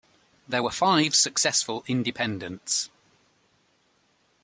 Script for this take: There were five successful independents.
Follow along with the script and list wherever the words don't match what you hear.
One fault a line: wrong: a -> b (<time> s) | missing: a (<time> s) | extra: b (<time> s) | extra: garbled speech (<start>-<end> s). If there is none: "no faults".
no faults